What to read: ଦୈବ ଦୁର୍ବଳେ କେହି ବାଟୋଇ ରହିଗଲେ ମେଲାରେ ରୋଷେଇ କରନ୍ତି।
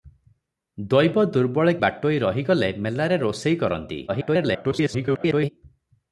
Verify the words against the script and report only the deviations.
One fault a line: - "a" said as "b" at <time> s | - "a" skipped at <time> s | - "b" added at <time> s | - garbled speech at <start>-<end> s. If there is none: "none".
- "କେହି" skipped at 1.8 s
- garbled speech at 4.1-5.5 s